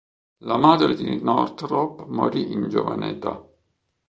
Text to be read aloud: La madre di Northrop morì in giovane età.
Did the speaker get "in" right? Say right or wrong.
right